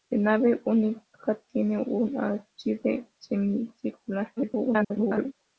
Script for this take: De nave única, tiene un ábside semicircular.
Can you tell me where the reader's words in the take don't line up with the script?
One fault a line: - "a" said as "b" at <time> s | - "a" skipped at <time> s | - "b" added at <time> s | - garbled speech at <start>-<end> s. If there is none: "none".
- garbled speech at 4.4-5.3 s